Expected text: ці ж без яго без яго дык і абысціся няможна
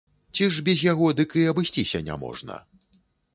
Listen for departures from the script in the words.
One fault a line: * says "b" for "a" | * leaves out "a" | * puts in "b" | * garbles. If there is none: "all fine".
* leaves out "без яго"